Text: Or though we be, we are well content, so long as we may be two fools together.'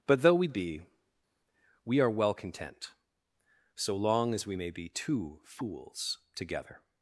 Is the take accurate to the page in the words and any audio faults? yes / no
no